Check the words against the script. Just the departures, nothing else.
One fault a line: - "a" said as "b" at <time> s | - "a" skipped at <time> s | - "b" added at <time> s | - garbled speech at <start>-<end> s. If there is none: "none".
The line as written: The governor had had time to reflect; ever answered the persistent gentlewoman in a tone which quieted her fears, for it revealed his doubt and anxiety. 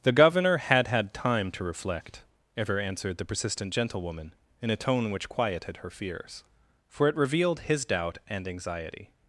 none